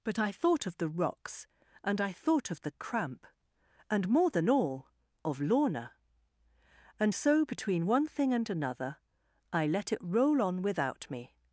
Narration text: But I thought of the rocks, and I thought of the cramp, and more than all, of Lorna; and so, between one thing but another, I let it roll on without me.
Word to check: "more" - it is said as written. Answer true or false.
true